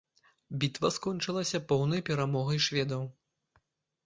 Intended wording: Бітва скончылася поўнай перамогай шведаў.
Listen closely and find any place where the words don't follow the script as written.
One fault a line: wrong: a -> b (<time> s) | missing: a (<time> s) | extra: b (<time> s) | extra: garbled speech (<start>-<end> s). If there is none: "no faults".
no faults